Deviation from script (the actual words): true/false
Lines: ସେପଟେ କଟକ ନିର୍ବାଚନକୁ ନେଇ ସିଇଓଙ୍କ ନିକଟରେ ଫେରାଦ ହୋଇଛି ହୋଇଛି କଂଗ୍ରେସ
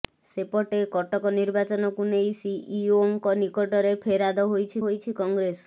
false